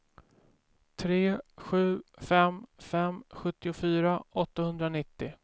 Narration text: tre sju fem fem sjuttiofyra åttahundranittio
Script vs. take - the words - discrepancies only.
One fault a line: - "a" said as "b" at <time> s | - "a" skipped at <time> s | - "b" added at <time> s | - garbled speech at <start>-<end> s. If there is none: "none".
none